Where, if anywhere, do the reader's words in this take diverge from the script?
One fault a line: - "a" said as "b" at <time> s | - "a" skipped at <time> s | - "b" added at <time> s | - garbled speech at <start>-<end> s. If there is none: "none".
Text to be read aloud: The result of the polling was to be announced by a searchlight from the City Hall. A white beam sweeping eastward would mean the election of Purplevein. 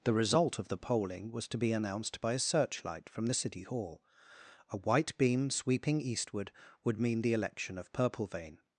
none